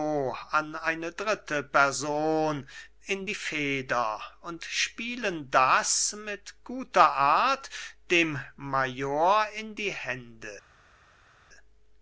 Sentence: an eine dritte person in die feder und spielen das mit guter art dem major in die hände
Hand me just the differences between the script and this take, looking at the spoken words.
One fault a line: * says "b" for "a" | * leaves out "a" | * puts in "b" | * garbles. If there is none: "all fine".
all fine